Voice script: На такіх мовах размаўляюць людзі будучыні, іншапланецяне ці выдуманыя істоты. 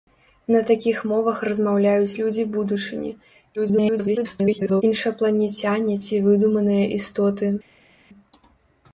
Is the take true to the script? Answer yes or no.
no